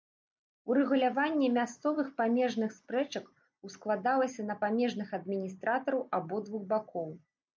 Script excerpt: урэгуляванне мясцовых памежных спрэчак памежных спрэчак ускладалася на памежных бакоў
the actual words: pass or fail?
fail